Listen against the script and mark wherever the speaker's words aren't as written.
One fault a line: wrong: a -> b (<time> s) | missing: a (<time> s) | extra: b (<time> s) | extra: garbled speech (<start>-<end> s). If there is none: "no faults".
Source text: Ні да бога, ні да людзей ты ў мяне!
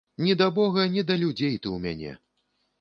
no faults